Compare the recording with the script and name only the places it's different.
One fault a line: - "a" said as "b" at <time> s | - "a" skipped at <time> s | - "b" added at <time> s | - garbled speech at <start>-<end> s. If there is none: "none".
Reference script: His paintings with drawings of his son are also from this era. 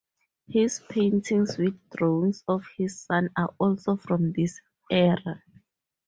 none